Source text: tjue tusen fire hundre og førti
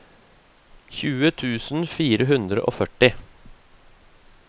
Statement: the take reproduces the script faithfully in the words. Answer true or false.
true